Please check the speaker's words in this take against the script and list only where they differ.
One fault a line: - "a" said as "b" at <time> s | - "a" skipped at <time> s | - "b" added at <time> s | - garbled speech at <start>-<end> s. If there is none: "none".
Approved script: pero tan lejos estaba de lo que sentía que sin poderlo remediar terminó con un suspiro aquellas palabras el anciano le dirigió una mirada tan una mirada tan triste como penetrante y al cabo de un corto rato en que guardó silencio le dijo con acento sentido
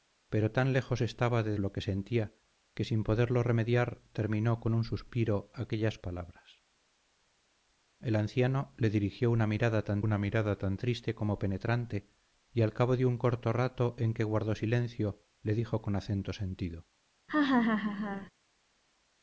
none